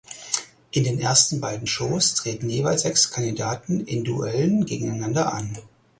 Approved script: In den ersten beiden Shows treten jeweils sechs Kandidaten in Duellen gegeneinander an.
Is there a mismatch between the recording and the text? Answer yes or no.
no